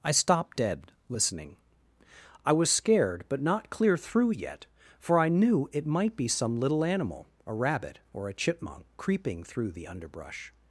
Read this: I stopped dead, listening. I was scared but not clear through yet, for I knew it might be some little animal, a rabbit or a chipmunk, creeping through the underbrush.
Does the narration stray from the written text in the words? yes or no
no